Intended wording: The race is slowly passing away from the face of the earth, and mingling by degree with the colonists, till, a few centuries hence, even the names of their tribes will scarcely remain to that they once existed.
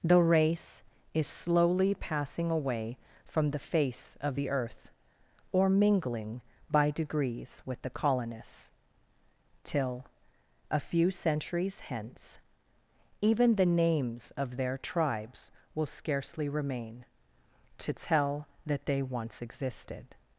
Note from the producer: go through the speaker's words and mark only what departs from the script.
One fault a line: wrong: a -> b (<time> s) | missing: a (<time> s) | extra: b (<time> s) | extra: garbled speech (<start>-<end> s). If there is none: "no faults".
wrong: and -> or (5.5 s)
wrong: degree -> degrees (6.9 s)
extra: tell (17.9 s)